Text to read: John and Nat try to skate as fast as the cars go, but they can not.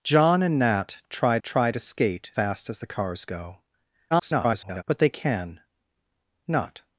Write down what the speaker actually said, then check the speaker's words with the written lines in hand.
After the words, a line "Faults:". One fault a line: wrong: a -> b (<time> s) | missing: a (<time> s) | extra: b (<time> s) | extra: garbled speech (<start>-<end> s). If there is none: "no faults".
John and Nat try try to skate fast as the cars go, [garbled] but they can not.
Faults:
extra: try (1.4 s)
missing: as (2.3 s)
extra: garbled speech (4.1-4.8 s)